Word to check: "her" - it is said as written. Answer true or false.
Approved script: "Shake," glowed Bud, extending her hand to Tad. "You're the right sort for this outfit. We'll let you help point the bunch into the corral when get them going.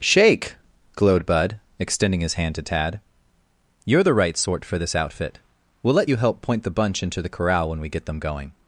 false